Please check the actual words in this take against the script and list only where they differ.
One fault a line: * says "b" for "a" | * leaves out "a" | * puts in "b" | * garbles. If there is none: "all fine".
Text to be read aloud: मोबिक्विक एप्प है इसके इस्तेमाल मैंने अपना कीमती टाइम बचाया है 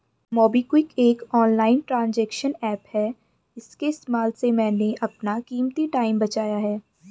* puts in "एक ऑनलाइन ट्रांजेक्शन"
* puts in "से"